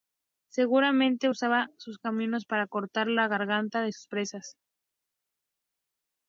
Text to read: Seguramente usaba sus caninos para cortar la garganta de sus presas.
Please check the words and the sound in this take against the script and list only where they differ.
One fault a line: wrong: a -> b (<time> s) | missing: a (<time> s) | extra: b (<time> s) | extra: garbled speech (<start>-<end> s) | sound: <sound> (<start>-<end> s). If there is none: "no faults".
no faults